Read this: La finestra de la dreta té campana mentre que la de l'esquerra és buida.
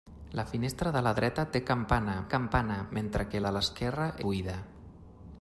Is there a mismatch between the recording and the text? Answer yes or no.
yes